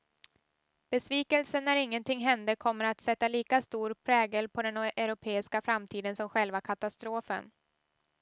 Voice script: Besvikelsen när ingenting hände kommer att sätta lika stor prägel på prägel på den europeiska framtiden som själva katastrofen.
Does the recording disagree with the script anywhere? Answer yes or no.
yes